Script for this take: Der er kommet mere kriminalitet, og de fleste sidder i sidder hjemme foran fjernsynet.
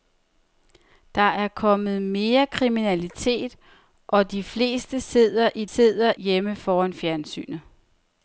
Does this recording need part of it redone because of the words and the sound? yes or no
no